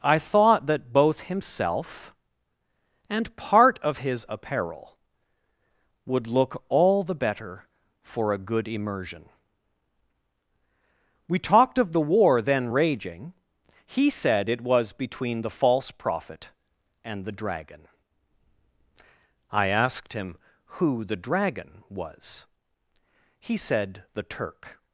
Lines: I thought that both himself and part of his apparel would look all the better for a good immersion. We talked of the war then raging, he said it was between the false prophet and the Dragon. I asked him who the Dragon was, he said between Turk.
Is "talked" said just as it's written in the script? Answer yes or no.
yes